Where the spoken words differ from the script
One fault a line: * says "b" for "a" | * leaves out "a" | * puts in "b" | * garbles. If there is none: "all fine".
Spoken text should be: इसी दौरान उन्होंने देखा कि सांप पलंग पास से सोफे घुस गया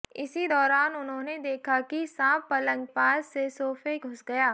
all fine